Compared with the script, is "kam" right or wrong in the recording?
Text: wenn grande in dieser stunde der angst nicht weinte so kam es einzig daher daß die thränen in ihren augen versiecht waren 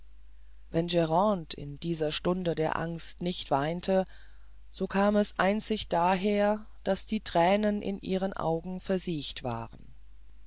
right